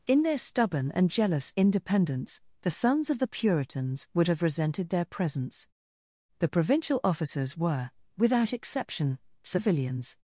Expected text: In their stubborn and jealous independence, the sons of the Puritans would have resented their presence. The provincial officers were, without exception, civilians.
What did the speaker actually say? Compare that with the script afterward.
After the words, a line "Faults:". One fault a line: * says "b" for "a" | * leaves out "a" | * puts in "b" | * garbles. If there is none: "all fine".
In their stubborn and jealous independence, the sons of the Puritans would have resented their presence. The provincial officers were, without exception, civilians.
Faults:
all fine